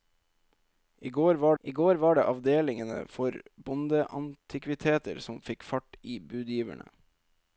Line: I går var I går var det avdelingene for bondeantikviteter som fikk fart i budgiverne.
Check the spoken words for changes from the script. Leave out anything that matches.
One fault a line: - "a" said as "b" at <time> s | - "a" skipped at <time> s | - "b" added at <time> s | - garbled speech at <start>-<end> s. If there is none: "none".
none